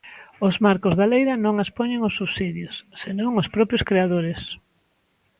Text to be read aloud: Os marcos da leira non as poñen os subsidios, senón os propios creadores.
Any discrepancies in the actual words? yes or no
no